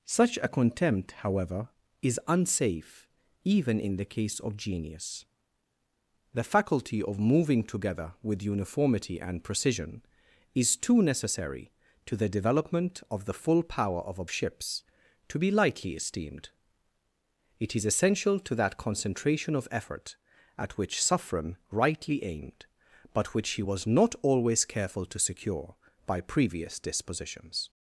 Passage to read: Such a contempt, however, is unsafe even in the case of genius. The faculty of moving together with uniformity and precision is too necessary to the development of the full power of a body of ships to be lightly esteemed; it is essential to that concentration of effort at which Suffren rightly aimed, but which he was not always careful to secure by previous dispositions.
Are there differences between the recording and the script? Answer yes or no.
yes